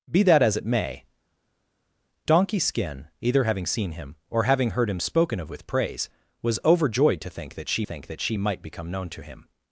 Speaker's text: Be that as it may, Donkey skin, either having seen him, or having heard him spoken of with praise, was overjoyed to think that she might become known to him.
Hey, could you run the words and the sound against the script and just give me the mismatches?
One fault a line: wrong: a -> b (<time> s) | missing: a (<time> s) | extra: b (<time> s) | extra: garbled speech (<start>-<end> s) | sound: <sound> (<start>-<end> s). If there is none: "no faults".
extra: think that she (7.8 s)